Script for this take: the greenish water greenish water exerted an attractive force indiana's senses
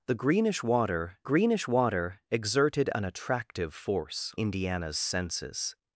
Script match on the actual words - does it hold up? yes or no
yes